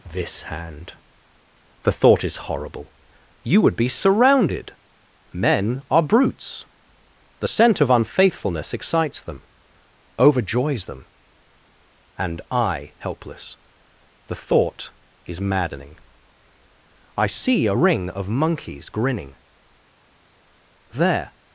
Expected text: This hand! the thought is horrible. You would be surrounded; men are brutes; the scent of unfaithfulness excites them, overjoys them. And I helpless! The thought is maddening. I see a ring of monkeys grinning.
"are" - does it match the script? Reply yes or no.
yes